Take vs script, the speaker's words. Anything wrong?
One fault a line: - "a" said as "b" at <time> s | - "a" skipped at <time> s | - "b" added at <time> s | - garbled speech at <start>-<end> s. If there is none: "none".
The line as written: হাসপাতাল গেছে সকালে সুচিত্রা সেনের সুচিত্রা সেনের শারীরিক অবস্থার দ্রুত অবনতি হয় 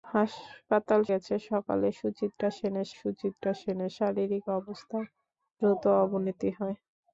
none